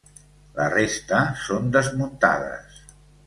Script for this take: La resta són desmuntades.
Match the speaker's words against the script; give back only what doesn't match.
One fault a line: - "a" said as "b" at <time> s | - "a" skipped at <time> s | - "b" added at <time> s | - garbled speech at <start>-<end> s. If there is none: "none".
none